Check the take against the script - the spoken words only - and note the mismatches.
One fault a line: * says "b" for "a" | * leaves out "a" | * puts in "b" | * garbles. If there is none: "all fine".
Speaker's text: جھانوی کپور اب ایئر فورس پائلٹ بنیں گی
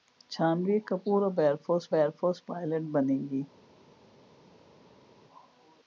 * puts in "ایئر فورس"